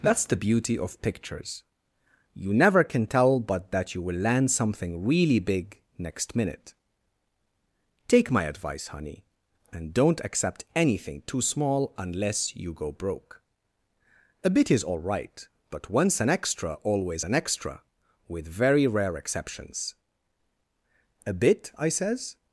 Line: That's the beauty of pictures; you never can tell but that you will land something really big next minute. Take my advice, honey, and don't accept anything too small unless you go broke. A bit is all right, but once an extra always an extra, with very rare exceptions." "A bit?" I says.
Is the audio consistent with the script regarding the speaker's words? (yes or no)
yes